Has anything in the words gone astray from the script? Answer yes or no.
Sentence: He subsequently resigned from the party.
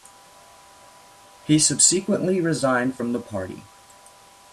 no